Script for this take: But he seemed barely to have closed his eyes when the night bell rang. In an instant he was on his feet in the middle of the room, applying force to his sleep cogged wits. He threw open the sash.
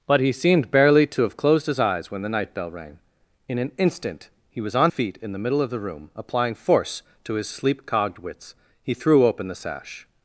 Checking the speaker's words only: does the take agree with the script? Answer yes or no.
no